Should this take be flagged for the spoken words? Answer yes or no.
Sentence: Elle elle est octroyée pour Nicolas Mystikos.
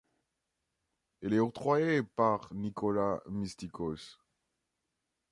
yes